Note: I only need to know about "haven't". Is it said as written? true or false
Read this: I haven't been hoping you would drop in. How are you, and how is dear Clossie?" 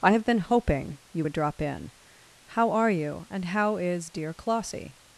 false